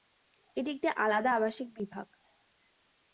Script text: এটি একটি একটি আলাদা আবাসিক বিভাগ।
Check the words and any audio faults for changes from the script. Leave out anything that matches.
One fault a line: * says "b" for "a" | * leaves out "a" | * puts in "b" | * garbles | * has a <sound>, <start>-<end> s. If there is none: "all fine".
* leaves out "একটি"